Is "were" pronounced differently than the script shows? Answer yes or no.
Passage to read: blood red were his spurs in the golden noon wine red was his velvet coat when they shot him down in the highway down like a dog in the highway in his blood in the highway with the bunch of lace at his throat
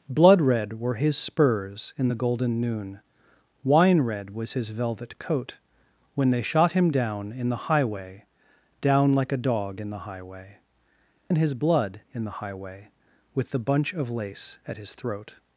no